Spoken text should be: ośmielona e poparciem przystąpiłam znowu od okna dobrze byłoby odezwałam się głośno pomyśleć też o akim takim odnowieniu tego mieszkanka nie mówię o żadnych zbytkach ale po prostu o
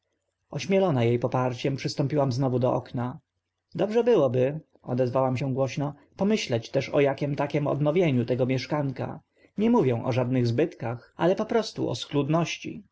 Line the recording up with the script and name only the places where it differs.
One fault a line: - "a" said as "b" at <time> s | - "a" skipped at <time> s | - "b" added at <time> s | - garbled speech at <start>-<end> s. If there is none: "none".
- "od" said as "do" at 2.6 s